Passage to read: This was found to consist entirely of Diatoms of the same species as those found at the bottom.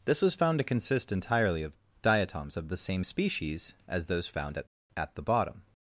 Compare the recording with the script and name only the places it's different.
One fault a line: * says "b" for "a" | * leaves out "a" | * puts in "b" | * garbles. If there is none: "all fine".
* puts in "at"